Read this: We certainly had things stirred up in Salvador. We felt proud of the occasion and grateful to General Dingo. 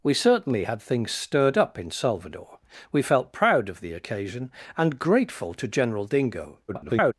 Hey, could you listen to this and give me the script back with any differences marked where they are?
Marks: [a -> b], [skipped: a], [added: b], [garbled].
We certainly had things stirred up in Salvador. We felt proud of the occasion and grateful to General Dingo. [garbled]